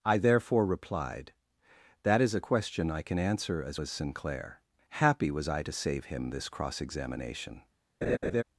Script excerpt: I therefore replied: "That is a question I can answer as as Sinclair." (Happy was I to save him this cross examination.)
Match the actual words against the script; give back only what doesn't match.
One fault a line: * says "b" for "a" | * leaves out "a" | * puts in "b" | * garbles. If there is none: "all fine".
all fine